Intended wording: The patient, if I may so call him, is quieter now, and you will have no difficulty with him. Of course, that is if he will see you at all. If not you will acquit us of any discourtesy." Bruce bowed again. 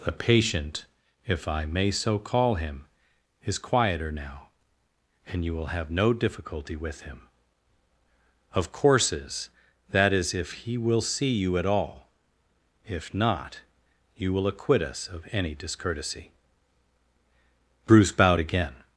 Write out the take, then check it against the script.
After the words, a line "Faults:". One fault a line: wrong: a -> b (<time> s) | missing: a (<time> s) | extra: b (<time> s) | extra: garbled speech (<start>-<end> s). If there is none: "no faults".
The patient, if I may so call him, is quieter now, and you will have no difficulty with him. Of courses, that is if he will see you at all. If not you will acquit us of any discourtesy." Bruce bowed again.
Faults:
wrong: course -> courses (8.7 s)